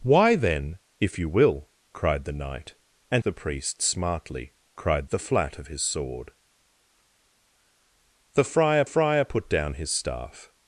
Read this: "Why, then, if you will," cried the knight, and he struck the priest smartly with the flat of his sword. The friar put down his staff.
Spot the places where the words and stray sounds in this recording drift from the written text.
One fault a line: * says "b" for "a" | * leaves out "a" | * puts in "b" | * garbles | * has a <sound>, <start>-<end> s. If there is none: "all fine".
* leaves out "he struck"
* says "cried" for "with"
* puts in "friar"